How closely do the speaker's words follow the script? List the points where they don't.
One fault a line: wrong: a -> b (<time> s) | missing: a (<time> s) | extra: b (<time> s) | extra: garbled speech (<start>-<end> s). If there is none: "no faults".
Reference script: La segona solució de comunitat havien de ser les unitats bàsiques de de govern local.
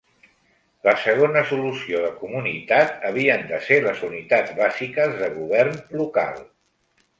missing: de (5.4 s)